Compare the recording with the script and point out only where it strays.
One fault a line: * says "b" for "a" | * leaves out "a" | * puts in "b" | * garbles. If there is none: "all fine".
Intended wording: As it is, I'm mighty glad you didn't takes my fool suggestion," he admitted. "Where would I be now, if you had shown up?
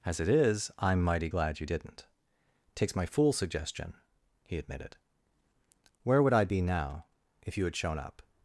all fine